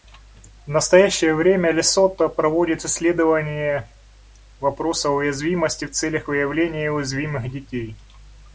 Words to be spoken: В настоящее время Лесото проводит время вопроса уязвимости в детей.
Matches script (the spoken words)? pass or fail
fail